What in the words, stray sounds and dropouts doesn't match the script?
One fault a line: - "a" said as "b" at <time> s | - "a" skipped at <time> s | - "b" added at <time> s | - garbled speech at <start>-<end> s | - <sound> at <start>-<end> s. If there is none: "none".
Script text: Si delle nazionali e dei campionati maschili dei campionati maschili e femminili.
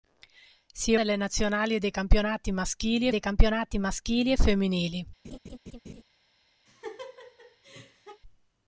- laugh at 5.2-6.0 s
- laugh at 6.7-8.2 s